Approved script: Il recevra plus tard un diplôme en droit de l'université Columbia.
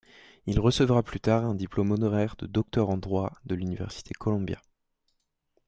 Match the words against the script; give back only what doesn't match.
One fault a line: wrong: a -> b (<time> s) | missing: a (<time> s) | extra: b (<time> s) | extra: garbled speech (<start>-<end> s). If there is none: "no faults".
extra: honoraire de docteur (1.9 s)